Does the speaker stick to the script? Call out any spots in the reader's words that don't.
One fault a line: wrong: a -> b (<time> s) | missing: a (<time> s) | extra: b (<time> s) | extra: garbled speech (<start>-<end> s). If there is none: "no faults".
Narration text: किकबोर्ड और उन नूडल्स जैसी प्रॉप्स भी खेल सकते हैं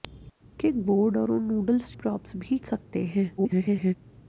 missing: जैसी (1.9 s)
missing: खेल (2.6 s)
extra: garbled speech (3.4-3.9 s)